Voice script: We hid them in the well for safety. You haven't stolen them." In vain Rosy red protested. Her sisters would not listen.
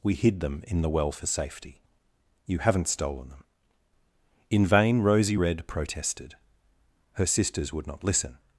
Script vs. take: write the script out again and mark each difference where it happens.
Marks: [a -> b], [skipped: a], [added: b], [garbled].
We hid them in the well for safety. You haven't stolen them." In vain Rosy red protested. Her sisters would not listen.